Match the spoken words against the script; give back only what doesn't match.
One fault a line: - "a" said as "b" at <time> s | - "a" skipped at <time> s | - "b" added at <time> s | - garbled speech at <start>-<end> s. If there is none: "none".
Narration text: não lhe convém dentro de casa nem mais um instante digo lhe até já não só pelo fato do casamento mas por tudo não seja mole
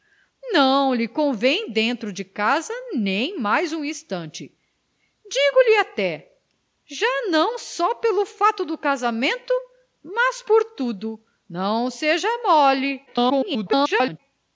- garbled speech at 13.1-14.2 s